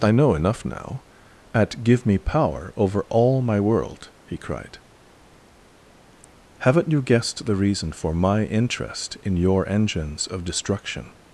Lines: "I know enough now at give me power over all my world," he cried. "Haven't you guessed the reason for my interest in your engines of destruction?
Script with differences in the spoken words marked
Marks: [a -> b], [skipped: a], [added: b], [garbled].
"I know enough now at give me power over all my world," he cried. "Haven't you guessed the reason for my interest in your engines of destruction?